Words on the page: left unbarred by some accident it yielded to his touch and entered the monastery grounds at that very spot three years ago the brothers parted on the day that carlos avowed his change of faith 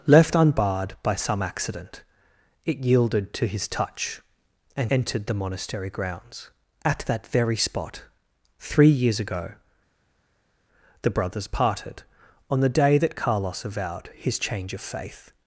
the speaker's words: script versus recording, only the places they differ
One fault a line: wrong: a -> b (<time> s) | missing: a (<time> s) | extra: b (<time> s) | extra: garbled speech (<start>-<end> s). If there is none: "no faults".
no faults